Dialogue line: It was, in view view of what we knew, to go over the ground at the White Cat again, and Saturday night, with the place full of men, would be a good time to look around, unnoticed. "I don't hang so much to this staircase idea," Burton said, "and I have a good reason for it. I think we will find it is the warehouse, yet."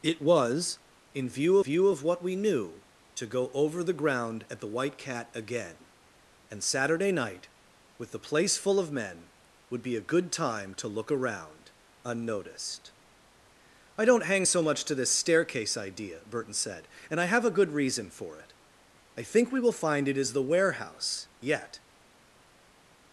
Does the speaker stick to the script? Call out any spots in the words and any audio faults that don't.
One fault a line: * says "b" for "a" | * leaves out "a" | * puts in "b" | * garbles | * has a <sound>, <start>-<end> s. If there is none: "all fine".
all fine